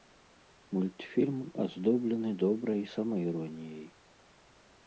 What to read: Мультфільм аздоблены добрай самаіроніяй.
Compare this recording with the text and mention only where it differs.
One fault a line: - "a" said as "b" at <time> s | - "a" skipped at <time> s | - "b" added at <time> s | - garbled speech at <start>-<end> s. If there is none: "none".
none